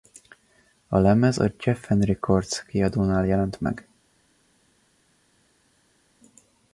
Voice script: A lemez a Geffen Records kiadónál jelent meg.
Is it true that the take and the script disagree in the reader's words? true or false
false